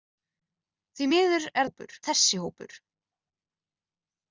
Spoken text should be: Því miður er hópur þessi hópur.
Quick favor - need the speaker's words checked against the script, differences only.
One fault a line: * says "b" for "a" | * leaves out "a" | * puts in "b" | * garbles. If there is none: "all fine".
all fine